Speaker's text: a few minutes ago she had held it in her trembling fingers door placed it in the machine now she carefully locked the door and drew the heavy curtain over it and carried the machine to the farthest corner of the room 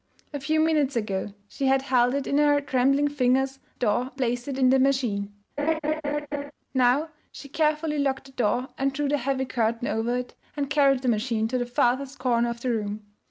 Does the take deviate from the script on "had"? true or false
false